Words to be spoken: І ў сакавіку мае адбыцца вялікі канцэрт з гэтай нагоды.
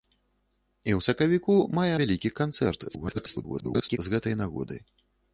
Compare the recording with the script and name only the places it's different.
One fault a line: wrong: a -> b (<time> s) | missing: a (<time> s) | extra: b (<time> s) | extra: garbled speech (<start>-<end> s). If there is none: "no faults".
missing: адбыцца (1.9 s)
extra: garbled speech (2.9-4.0 s)